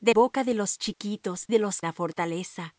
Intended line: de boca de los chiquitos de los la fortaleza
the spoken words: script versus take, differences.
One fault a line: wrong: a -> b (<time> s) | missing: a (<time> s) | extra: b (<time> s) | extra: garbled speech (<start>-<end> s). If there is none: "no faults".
no faults